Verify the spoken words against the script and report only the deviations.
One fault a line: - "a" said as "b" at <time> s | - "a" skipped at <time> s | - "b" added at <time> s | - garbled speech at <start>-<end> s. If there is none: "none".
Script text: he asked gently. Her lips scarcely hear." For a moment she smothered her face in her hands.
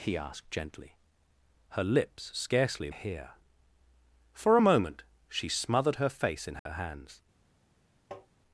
none